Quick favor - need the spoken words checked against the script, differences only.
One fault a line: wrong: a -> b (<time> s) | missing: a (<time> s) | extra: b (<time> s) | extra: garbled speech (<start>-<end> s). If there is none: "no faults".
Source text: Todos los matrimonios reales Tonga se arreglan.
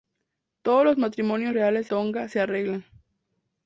no faults